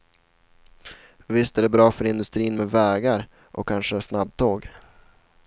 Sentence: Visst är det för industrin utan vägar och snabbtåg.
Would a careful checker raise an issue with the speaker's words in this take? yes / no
yes